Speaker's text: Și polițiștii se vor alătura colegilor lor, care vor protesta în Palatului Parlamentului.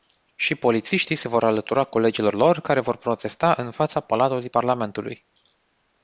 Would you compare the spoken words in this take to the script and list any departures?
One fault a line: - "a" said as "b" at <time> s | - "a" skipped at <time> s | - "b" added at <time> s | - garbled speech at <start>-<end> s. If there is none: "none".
- "fața" added at 3.7 s